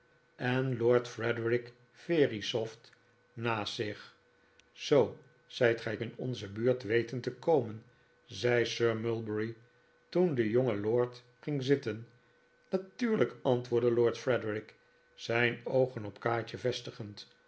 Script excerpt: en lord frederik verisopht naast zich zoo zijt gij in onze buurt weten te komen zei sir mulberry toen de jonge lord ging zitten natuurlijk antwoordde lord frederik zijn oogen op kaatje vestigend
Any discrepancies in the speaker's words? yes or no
no